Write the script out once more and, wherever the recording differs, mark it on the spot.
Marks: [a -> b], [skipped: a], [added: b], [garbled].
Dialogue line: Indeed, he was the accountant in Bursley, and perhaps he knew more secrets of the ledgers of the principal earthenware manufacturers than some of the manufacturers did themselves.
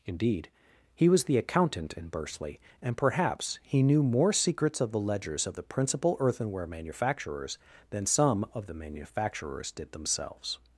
Indeed, he was the accountant in Bursley, and perhaps he knew more secrets of the ledgers of the principal earthenware manufacturers than some of the manufacturers did themselves.